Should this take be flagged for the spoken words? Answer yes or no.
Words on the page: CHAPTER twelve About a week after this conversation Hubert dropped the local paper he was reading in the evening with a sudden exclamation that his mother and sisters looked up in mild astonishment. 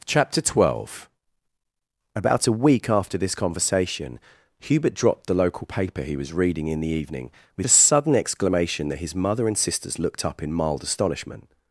no